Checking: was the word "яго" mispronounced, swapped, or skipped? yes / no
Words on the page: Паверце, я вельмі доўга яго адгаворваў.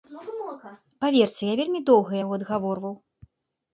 no